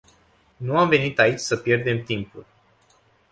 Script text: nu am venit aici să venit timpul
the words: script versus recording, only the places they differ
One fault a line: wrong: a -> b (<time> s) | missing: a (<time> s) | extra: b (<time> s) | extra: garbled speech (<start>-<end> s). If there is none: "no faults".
wrong: venit -> pierdem (1.6 s)